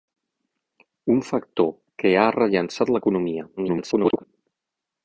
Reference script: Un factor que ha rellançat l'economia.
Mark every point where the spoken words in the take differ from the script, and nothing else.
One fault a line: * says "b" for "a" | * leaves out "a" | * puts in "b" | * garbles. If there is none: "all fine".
* garbles